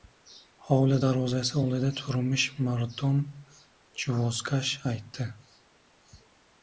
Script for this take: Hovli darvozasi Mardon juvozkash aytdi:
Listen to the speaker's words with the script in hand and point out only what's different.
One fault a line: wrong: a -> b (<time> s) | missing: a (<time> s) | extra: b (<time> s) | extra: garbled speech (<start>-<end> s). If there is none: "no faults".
extra: oldida turmish (1.6 s)